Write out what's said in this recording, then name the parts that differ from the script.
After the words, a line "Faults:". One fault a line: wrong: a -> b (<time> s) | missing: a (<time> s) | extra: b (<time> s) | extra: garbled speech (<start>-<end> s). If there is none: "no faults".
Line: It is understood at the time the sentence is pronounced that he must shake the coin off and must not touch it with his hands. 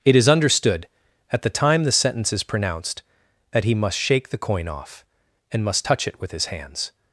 It is understood at the time the sentence is pronounced that he must shake the coin off and must touch it with his hands.
Faults:
missing: not (5.8 s)